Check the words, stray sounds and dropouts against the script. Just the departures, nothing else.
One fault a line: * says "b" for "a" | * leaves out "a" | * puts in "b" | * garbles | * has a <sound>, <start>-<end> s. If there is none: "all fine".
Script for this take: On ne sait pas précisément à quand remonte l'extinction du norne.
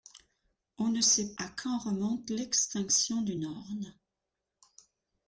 * leaves out "pas précisément"